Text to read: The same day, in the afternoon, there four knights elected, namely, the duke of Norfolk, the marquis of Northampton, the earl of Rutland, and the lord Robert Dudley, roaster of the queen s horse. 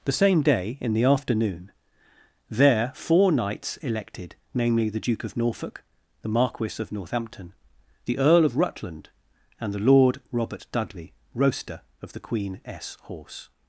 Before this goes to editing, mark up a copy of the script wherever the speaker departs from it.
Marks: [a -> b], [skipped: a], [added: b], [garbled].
The same day, in the afternoon, there four knights elected, namely, the duke of Norfolk, the marquis of Northampton, the earl of Rutland, and the lord Robert Dudley, roaster of the queen s horse.